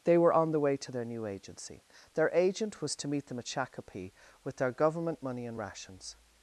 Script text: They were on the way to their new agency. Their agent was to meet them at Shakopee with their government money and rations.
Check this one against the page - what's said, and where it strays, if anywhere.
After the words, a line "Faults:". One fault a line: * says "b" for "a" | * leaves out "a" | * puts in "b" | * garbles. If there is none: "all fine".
They were on the way to their new agency. Their agent was to meet them at Shakopee with their government money and rations.
Faults:
all fine